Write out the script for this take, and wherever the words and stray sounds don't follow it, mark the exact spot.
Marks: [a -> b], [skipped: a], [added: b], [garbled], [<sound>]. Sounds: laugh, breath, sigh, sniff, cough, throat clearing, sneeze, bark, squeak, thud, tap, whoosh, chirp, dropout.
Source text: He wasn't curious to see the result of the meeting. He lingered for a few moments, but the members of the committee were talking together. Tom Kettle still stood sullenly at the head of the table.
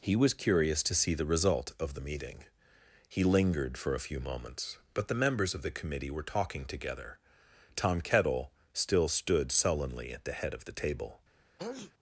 He [wasn't -> was] curious to see the result of the meeting. He lingered for a few moments, but the members of the committee were talking together. Tom Kettle still stood sullenly at the head of the table. [sneeze]